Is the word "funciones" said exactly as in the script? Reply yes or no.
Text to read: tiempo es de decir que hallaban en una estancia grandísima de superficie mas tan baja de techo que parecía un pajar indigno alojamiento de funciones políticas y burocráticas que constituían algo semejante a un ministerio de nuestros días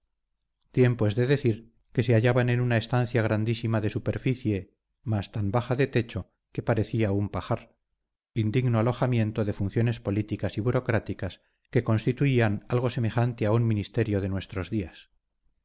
yes